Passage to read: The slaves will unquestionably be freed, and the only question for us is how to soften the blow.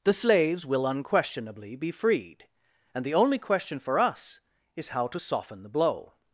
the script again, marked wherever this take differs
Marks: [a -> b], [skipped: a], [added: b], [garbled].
The slaves will unquestionably be freed, and the only question for us is how to soften the blow.